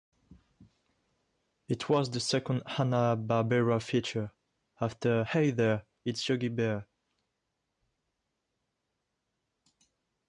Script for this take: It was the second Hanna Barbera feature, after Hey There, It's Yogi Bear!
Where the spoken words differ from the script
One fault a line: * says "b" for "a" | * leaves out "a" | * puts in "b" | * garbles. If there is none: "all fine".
all fine